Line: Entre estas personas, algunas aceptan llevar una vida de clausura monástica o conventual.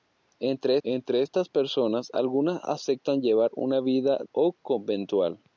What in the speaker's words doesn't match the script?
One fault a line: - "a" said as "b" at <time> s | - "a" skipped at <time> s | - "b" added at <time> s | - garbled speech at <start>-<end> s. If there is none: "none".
- "entre" added at 0.8 s
- "de clausura monástica" skipped at 4.2 s